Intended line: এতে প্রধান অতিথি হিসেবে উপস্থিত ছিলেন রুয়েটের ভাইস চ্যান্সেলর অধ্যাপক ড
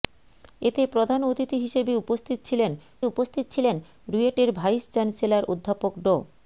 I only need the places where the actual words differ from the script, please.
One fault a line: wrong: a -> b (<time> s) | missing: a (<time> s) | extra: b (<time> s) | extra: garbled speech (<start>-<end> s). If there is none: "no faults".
extra: উপস্থিত ছিলেন (3.0 s)